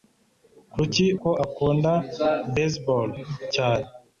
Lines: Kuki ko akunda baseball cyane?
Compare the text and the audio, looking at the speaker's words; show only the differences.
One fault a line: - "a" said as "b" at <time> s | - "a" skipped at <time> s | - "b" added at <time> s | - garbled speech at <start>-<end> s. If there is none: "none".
none